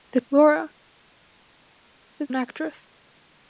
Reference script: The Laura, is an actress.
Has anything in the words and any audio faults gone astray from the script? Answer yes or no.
no